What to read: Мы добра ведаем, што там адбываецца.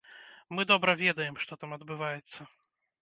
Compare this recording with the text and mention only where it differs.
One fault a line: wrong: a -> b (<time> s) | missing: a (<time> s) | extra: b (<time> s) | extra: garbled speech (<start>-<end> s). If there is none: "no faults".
no faults